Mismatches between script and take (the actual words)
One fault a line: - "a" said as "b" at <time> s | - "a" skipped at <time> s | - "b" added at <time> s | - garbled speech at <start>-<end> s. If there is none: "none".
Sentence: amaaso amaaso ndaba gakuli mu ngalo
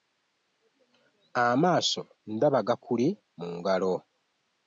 - "amaaso" skipped at 2.0 s